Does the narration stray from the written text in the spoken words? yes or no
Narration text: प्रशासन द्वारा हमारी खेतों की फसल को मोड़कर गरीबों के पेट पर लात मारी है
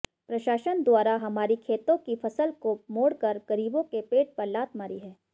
no